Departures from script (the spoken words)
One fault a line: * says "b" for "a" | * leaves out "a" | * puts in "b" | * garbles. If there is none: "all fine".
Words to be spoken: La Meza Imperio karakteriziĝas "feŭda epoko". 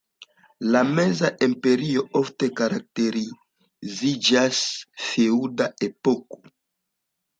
* puts in "ofte"